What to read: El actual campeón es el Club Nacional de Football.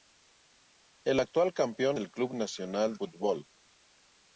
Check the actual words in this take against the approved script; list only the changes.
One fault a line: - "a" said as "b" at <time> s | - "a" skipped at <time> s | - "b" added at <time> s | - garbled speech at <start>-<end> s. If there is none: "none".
- "es" skipped at 2.0 s
- "de" skipped at 3.0 s